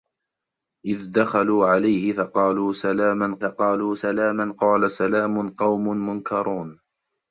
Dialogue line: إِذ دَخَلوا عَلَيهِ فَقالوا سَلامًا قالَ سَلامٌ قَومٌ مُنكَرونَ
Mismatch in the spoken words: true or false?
true